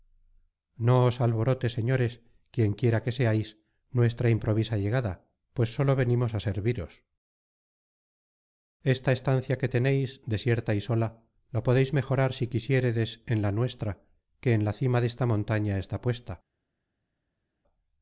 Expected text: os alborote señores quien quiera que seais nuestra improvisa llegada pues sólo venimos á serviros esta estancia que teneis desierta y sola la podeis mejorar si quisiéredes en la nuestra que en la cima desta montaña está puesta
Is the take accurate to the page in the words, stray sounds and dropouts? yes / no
yes